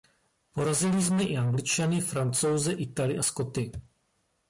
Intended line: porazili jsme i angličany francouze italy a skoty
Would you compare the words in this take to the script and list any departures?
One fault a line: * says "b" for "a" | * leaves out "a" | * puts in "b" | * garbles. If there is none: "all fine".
all fine